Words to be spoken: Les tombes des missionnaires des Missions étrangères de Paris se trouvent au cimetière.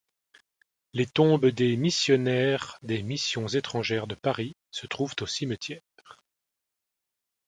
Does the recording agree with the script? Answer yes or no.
yes